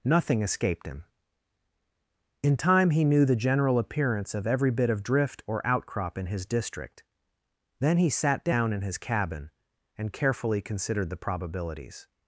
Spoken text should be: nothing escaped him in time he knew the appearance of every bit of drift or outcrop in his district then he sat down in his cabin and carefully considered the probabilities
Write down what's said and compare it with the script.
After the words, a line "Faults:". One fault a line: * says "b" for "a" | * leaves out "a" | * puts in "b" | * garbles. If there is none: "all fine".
nothing escaped him in time he knew the general appearance of every bit of drift or outcrop in his district then he sat down in his cabin and carefully considered the probabilities
Faults:
* puts in "general"